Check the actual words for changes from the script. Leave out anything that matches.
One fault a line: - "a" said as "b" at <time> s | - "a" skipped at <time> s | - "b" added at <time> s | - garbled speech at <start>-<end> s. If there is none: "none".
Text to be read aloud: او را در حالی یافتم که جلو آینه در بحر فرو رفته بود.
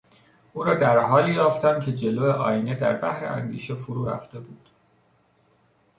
- "اندیشه" added at 3.2 s